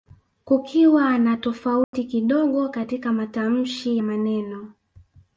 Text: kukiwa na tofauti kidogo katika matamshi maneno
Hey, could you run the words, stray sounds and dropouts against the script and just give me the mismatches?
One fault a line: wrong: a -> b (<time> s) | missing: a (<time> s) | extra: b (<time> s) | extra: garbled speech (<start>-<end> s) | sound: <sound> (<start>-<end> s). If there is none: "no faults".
sound: dropout (1.8-1.9 s)